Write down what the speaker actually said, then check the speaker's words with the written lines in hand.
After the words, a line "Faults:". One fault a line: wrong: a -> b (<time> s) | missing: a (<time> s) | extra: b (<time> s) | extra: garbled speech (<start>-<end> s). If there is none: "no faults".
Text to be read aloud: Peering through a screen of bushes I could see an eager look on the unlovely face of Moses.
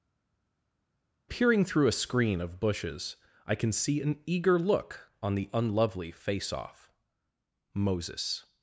Peering through a screen of bushes I can see an eager look on the unlovely face off Moses.
Faults:
wrong: could -> can (3.6 s)
wrong: of -> off (6.5 s)